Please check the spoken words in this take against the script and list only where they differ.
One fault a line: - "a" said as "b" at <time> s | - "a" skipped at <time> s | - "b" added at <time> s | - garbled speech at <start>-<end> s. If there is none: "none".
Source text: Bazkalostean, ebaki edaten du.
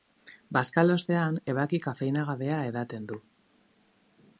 - "kafeinagabea" added at 1.9 s